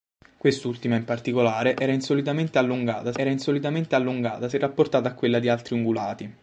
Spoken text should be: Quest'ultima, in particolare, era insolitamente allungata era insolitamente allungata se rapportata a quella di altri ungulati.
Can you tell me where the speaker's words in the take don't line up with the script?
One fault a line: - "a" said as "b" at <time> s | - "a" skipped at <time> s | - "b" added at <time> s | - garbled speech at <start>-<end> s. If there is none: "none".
none